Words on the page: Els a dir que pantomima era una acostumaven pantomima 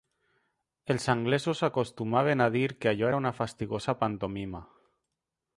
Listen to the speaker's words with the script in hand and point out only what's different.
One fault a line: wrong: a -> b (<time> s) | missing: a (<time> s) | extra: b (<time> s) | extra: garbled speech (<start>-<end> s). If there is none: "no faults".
extra: anglesos acostumaven (1.1 s)
wrong: pantomima -> allò (3.0 s)
wrong: acostumaven -> fastigosa (3.4 s)